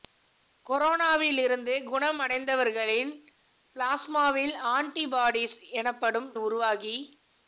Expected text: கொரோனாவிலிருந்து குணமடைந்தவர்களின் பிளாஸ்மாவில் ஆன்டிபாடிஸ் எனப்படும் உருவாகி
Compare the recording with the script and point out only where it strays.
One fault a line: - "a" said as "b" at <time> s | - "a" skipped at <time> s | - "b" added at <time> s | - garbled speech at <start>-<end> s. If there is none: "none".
none